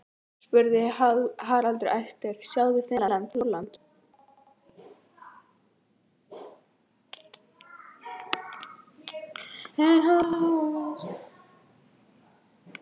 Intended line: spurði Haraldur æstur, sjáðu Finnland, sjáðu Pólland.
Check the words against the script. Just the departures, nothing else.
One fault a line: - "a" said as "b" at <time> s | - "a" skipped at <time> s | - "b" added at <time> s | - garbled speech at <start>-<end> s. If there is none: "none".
- "sjáðu" skipped at 3.3 s